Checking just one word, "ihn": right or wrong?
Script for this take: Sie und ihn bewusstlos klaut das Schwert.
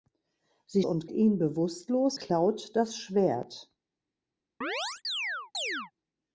right